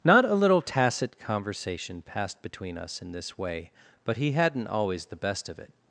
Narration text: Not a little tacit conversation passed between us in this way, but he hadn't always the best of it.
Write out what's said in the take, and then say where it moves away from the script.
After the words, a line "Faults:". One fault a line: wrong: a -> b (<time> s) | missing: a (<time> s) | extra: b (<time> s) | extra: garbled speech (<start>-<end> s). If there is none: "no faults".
Not a little tacit conversation passed between us in this way, but he hadn't always the best of it.
Faults:
no faults